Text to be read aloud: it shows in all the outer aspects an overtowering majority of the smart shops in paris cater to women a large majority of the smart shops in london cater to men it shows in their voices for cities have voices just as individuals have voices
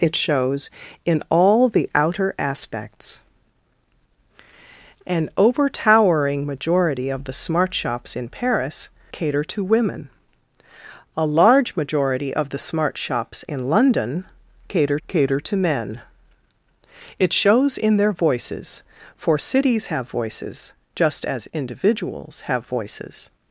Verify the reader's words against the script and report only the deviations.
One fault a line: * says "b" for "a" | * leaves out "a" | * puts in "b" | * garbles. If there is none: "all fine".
* puts in "cater"